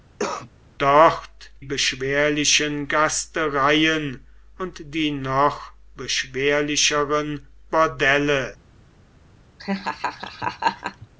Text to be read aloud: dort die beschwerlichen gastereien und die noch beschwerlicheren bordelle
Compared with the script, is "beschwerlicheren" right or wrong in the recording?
right